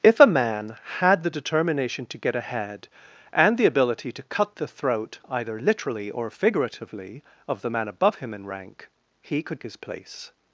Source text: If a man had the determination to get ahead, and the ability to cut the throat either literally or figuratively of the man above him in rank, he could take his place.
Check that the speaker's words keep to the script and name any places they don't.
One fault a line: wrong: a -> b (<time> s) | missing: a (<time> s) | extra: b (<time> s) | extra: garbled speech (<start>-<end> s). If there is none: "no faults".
missing: take (9.6 s)